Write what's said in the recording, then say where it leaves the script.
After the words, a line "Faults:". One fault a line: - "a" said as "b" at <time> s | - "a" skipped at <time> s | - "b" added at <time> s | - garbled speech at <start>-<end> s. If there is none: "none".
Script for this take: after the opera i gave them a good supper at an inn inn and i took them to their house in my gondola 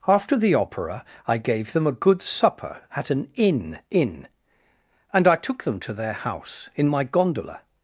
after the opera i gave them a good supper at an inn inn and i took them to their house in my gondola
Faults:
none